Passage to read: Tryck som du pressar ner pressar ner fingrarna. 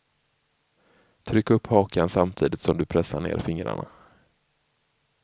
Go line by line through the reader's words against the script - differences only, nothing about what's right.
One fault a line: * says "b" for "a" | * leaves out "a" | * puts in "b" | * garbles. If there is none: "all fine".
* puts in "upp hakan samtidigt"
* leaves out "pressar ner"